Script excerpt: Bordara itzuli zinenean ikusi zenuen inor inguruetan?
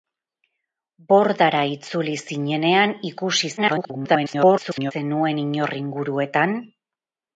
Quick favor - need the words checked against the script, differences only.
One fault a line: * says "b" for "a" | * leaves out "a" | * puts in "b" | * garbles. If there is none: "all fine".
* garbles